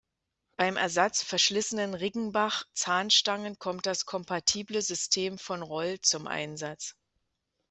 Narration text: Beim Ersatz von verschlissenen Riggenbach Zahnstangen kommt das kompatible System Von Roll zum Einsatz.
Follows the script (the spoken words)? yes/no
no